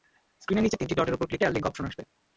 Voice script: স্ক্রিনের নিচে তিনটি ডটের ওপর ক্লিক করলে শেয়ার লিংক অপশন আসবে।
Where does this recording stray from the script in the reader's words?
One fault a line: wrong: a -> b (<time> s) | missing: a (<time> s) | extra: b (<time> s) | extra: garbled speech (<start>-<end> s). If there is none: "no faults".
missing: করলে (1.4 s)